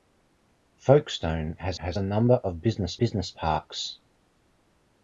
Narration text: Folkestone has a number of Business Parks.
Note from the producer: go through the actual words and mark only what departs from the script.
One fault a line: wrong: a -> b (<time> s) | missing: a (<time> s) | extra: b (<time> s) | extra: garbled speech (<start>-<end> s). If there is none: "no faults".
extra: has (1.8 s)
extra: Business (3.0 s)